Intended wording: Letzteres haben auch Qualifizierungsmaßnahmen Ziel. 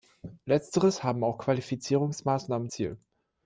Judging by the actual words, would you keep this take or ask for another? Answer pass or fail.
pass